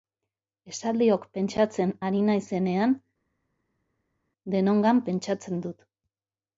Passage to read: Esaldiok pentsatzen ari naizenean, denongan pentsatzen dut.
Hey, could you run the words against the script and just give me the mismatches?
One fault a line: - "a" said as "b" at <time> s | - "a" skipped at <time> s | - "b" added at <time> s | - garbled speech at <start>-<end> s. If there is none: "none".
none